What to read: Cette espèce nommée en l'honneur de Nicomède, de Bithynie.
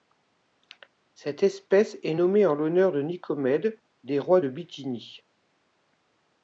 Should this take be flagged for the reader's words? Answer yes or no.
yes